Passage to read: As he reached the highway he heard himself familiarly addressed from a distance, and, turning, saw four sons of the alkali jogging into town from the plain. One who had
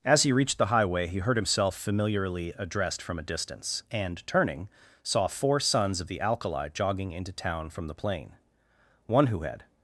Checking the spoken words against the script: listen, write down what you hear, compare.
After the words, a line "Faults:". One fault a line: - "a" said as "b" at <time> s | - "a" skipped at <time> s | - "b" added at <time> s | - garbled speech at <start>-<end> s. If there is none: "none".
As he reached the highway he heard himself familiarly addressed from a distance, and, turning, saw four sons of the alkali jogging into town from the plain. One who had
Faults:
none